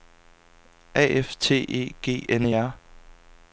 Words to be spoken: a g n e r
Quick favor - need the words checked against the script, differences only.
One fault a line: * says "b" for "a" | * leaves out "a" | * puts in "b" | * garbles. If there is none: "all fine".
* puts in "f t e"